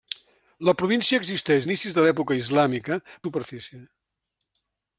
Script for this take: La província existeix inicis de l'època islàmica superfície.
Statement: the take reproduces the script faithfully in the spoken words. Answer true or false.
true